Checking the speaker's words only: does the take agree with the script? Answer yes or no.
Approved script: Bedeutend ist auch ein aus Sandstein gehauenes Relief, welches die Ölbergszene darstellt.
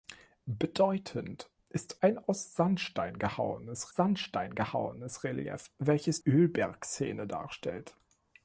no